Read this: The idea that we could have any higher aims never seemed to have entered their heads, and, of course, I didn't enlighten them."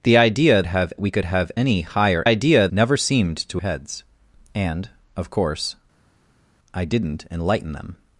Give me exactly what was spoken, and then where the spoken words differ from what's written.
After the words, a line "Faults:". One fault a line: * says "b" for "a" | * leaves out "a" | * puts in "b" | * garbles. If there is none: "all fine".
The idea have we could have any higher idea never seemed to heads, and, of course, I didn't enlighten them."
Faults:
* says "have" for "that"
* says "idea" for "aims"
* leaves out "have entered their"